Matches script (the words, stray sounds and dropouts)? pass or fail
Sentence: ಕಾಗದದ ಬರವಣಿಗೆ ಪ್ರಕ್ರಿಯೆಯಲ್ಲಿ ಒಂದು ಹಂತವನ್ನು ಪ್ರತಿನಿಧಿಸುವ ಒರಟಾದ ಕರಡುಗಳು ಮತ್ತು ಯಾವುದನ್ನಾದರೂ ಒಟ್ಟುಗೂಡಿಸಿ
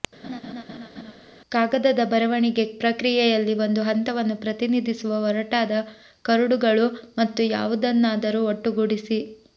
fail